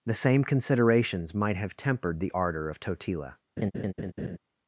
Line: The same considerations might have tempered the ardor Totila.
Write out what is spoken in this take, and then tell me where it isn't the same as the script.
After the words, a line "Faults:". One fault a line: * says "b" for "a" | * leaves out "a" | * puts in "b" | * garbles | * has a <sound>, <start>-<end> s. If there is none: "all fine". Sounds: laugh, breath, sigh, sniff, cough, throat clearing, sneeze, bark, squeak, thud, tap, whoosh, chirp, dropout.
The same considerations might have tempered the ardor of Totila.
Faults:
* puts in "of"
* has a laugh, 3.6-4.4 s